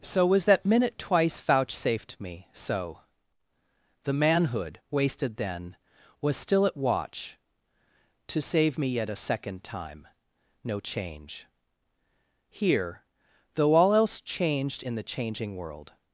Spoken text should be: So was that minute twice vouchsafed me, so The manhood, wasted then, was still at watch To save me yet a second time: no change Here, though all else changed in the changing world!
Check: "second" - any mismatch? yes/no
no